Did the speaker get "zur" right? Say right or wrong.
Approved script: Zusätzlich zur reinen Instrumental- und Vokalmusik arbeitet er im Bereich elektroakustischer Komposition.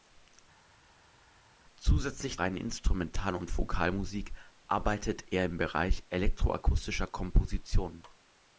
wrong